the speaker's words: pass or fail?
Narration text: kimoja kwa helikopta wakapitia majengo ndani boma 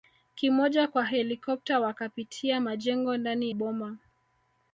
pass